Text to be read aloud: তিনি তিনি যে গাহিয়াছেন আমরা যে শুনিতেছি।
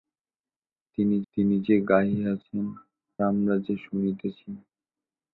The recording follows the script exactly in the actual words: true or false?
true